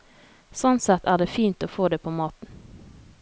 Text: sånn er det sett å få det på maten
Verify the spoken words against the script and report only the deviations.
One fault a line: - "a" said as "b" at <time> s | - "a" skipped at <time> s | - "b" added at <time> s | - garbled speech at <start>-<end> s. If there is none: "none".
- "sett" added at 0.8 s
- "sett" said as "fint" at 1.3 s